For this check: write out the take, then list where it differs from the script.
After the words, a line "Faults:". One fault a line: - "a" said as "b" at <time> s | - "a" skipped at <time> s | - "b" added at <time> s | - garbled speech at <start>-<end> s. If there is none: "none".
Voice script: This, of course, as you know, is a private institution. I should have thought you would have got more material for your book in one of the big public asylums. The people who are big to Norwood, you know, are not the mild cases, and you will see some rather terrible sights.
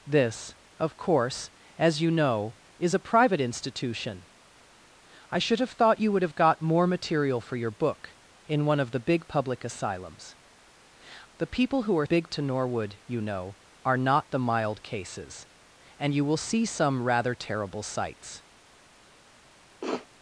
This, of course, as you know, is a private institution. I should have thought you would have got more material for your book in one of the big public asylums. The people who are big to Norwood, you know, are not the mild cases, and you will see some rather terrible sights.
Faults:
none